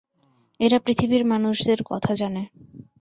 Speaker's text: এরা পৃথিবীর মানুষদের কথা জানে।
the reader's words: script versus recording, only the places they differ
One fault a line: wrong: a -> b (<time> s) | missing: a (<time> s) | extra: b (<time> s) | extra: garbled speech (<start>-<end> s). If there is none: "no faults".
no faults